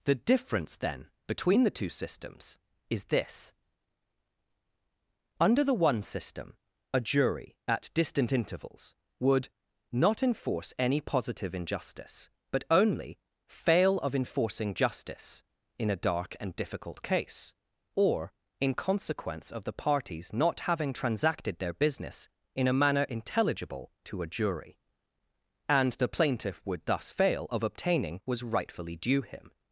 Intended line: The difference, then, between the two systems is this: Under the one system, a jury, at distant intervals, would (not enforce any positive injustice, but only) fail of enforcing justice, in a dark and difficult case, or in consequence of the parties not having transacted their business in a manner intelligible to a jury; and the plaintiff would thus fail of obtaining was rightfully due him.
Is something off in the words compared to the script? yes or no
no